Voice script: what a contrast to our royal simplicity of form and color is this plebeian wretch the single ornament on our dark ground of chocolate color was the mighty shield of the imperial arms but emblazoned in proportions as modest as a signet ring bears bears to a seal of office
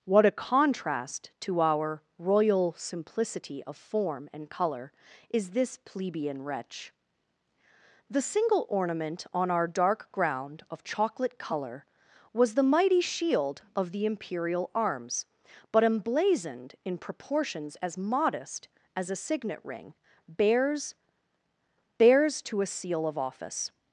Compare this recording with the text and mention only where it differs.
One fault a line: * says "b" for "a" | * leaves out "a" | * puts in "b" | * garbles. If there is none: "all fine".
all fine